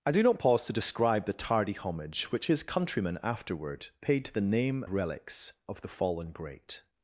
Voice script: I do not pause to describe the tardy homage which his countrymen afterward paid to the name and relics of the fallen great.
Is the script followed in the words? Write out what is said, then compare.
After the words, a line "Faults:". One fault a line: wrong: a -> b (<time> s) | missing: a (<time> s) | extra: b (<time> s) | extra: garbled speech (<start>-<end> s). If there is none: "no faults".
I do not pause to describe the tardy homage which his countrymen afterward paid to the name relics of the fallen great.
Faults:
missing: and (4.8 s)